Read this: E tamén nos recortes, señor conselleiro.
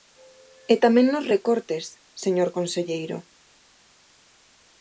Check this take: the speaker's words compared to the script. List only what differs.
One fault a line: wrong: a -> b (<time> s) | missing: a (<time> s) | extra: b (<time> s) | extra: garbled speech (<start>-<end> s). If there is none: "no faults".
no faults